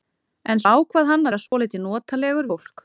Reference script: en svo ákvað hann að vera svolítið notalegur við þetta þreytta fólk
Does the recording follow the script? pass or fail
fail